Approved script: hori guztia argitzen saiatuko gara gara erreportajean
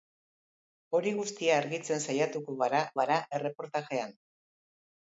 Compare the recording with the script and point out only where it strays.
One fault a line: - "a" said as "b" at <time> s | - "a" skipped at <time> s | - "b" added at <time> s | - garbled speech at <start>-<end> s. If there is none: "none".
none